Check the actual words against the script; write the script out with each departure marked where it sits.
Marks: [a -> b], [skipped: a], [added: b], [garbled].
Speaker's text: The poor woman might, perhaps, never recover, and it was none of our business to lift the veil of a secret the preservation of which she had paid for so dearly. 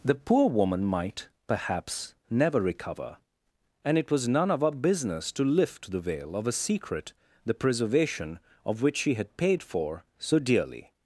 The poor woman might, perhaps, never recover, and it was none of our business to lift the veil of a secret the preservation of which she had paid for so dearly.